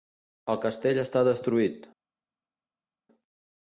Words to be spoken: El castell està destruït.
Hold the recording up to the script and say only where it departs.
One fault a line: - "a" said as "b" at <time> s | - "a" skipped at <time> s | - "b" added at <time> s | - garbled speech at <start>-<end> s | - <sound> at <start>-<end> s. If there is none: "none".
none